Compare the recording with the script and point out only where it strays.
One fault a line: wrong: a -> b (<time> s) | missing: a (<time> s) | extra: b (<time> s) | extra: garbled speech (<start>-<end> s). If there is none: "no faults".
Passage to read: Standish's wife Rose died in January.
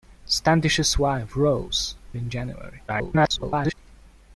missing: died (1.9 s)
extra: garbled speech (2.9-3.7 s)